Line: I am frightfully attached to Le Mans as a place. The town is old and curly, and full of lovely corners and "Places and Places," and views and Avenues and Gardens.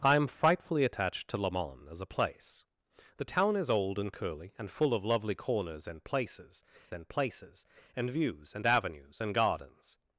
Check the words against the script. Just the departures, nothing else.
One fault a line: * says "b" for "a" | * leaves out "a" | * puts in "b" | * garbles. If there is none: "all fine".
all fine